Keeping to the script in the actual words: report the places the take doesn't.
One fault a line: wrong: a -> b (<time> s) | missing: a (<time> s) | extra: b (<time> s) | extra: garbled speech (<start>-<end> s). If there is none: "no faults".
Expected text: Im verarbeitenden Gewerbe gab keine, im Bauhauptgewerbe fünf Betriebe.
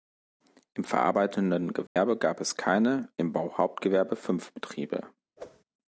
extra: es (2.4 s)